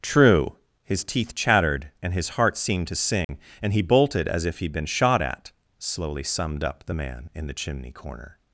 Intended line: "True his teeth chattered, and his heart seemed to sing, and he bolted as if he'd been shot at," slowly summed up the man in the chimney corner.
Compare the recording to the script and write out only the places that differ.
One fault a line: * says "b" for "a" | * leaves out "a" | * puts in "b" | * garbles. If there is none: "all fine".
all fine